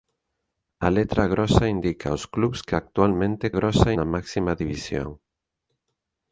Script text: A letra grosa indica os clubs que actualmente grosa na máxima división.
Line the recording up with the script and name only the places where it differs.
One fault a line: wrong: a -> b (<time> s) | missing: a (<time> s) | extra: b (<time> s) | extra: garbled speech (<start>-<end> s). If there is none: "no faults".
no faults